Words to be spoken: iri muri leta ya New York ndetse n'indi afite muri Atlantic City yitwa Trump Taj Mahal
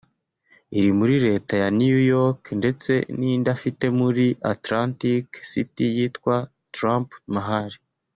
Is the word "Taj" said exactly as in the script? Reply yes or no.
no